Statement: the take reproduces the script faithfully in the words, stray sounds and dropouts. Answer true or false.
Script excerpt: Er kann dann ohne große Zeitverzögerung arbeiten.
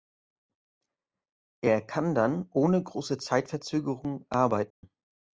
false